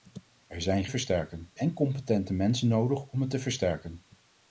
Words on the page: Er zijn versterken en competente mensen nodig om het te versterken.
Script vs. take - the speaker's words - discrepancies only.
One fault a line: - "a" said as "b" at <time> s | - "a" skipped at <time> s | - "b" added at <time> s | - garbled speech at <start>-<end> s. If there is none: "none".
none